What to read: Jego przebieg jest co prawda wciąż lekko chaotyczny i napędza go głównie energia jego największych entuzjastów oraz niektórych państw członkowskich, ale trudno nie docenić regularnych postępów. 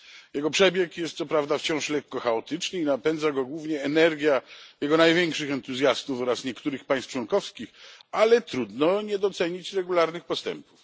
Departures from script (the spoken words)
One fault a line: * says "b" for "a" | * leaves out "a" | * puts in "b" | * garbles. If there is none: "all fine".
all fine